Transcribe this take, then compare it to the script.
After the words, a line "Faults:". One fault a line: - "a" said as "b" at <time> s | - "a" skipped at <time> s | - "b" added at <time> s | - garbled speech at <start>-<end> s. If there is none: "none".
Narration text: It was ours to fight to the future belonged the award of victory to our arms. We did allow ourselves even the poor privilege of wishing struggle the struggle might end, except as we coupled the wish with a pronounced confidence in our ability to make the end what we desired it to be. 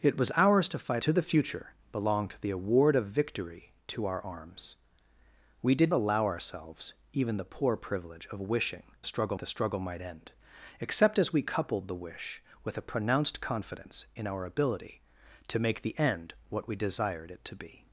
It was ours to fight to the future belonged the award of victory to our arms. We did allow ourselves even the poor privilege of wishing struggle the struggle might end, except as we coupled the wish with a pronounced confidence in our ability to make the end what we desired it to be.
Faults:
none